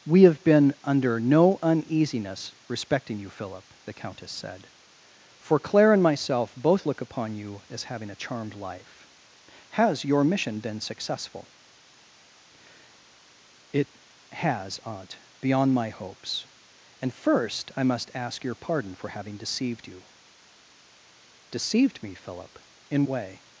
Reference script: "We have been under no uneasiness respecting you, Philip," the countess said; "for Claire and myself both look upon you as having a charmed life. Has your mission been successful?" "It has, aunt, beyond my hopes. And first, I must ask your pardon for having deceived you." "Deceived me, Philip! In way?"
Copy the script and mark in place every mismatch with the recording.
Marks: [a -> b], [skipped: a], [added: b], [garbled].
"We have been under no uneasiness respecting you, Philip," the countess said; "for Claire and myself both look upon you as having a charmed life. Has your mission been successful?" "It has, aunt, beyond my hopes. And first, I must ask your pardon for having deceived you." "Deceived me, Philip! In way?"